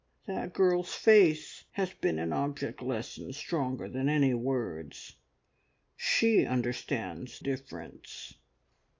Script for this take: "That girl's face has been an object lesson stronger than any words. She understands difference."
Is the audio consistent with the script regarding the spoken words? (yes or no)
yes